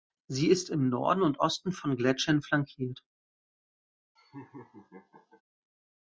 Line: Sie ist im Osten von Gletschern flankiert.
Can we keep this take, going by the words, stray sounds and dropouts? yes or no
no